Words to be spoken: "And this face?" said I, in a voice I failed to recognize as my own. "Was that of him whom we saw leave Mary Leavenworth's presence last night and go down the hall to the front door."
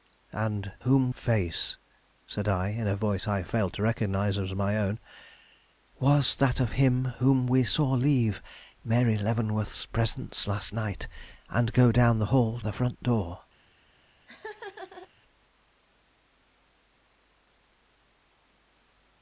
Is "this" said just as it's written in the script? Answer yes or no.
no